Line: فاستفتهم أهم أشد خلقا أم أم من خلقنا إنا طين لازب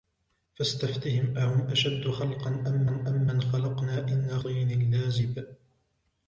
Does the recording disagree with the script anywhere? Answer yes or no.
no